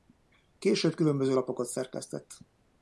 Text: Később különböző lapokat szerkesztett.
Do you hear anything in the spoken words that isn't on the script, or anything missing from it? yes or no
no